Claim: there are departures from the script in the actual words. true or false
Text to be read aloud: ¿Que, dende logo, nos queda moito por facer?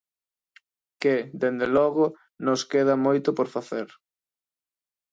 false